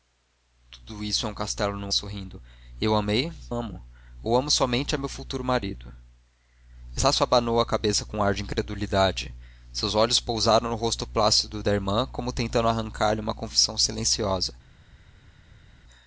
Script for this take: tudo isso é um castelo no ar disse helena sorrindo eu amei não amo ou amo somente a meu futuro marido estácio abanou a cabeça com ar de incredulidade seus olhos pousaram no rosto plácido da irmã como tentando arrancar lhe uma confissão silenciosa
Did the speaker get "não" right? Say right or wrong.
wrong